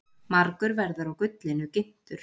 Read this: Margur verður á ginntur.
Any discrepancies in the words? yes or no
yes